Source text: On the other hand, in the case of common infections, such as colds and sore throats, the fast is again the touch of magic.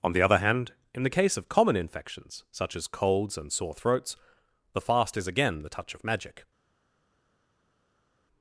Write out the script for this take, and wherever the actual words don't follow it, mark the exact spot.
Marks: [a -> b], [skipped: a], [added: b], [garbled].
On the other hand, in the case of common infections, such as colds and sore throats, the fast is again the touch of magic.